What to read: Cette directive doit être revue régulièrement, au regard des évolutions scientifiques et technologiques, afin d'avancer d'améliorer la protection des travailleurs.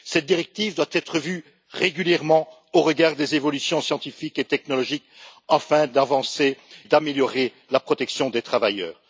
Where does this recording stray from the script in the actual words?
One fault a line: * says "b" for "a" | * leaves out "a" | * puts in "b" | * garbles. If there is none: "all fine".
all fine